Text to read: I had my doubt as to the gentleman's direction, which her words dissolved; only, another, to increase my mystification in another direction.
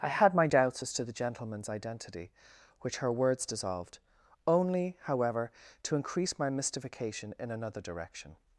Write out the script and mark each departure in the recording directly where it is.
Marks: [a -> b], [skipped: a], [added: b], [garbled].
I had my [doubt -> doubts] as to the gentleman's [direction, -> identity] which her words dissolved; only, [another, -> however] to increase my mystification in another direction.